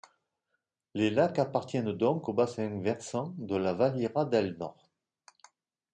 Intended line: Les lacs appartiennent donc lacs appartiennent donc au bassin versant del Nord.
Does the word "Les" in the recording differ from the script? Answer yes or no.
no